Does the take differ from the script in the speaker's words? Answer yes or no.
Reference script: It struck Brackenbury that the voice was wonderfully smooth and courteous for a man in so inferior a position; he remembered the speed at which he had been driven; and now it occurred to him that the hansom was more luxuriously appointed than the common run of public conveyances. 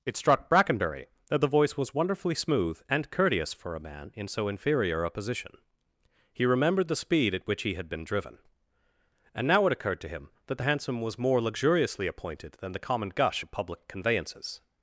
yes